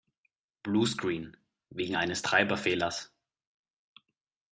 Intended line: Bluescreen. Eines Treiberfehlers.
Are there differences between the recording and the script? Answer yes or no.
yes